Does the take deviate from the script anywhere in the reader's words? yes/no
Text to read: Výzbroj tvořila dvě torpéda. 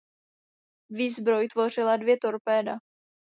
no